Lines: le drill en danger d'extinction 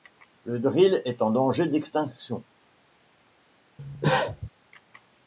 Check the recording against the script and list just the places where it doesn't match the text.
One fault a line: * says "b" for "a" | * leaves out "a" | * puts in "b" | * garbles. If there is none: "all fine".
* puts in "est"